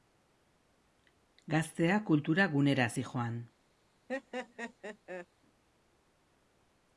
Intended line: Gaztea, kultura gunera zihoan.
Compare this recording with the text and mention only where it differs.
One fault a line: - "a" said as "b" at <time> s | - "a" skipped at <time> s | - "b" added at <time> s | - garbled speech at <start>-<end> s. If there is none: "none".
none